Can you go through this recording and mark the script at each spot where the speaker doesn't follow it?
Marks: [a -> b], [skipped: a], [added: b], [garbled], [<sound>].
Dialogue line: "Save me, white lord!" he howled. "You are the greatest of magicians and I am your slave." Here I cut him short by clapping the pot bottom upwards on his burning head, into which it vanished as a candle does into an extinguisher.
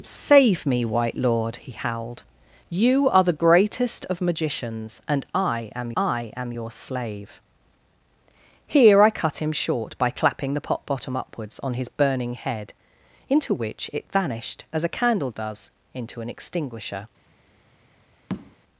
"Save me, white lord!" he howled. "You are the greatest of magicians and I am [added: I am] your slave." Here I cut him short by clapping the pot bottom upwards on his burning head, into which it vanished as a candle does into an extinguisher. [tap]